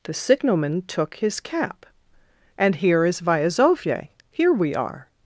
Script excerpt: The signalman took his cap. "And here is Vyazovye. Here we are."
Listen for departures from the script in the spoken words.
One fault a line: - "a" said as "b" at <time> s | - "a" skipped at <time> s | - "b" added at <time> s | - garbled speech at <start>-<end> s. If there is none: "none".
none